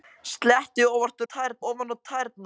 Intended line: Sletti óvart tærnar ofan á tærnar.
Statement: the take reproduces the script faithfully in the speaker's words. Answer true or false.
true